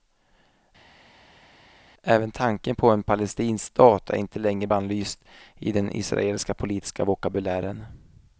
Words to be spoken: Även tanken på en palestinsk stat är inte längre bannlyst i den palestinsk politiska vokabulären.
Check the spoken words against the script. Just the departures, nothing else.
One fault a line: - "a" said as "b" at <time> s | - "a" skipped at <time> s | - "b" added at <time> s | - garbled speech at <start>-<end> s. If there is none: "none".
- "palestinsk" said as "israeliska" at 5.9 s